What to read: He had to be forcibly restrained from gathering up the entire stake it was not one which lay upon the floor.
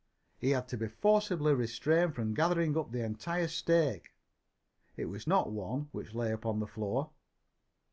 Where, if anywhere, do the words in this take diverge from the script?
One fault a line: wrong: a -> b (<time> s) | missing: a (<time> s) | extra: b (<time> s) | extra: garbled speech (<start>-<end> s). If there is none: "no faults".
no faults